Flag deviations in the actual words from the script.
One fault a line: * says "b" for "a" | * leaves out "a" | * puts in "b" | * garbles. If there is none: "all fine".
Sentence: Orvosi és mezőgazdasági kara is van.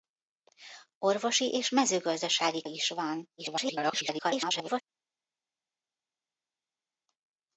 * leaves out "kara"
* garbles